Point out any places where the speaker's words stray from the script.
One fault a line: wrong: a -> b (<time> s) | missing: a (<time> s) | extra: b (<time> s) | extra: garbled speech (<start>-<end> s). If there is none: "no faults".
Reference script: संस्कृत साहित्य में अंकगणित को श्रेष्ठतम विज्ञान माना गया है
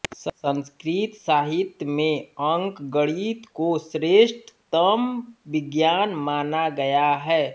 no faults